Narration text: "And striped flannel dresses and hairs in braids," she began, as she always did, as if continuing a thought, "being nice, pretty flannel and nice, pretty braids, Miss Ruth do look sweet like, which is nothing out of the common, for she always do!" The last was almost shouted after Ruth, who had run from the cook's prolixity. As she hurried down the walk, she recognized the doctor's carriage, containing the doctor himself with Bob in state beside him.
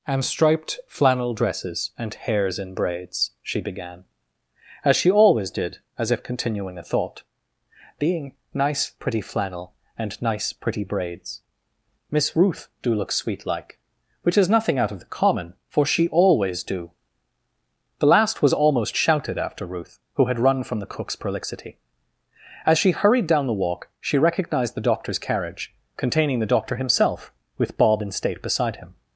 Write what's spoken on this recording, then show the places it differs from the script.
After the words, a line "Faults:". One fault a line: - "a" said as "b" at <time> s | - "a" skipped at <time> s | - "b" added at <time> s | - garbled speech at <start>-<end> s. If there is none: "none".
"And striped flannel dresses and hairs in braids," she began, as she always did, as if continuing a thought, "being nice, pretty flannel and nice, pretty braids, Miss Ruth do look sweet like, which is nothing out of the common, for she always do!" The last was almost shouted after Ruth, who had run from the cook's prolixity. As she hurried down the walk, she recognized the doctor's carriage, containing the doctor himself with Bob in state beside him.
Faults:
none